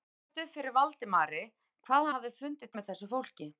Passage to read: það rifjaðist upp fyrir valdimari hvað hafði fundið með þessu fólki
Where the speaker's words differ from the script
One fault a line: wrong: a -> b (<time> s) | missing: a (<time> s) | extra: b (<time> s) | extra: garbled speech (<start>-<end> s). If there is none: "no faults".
no faults